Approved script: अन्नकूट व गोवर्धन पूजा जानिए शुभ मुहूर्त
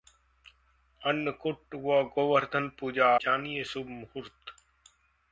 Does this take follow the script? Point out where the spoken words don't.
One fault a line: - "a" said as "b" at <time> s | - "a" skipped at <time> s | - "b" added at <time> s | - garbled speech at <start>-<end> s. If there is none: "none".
none